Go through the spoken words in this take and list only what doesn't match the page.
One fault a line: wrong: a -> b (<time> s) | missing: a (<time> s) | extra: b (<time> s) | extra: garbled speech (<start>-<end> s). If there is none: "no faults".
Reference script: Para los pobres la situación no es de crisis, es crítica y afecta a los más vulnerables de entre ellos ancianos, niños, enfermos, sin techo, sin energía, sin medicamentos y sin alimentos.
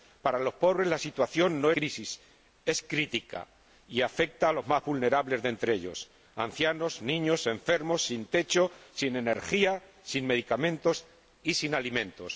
missing: es de (1.7 s)